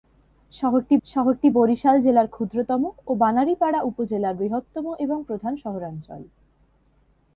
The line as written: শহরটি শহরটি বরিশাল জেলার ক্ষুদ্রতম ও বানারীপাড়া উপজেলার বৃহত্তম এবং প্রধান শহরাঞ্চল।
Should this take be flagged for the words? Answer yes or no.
no